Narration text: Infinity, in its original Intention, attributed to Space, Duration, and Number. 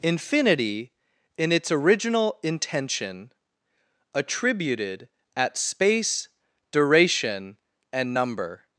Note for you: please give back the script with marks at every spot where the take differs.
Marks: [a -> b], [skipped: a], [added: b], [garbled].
Infinity, in its original Intention, attributed [to -> at] Space, Duration, and Number.